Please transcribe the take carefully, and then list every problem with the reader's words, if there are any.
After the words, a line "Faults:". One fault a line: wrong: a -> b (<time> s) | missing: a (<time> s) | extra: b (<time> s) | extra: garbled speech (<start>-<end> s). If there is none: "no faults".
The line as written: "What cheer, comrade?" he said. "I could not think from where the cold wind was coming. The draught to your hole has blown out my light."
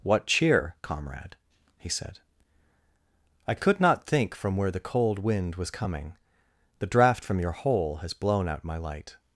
"What cheer, comrade?" he said. "I could not think from where the cold wind was coming. The draught from your hole has blown out my light."
Faults:
wrong: to -> from (7.2 s)